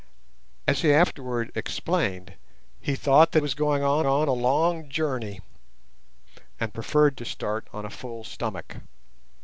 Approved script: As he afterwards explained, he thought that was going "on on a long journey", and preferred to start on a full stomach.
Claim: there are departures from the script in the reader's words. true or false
false